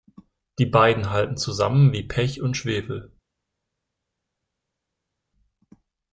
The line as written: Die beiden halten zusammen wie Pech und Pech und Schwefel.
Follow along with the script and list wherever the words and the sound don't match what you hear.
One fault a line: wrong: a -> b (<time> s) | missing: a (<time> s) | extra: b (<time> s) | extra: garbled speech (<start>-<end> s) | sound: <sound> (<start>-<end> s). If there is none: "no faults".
missing: Pech und (2.6 s)